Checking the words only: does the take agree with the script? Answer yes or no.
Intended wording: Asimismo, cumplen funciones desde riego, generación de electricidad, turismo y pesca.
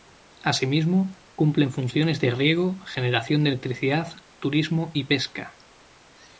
no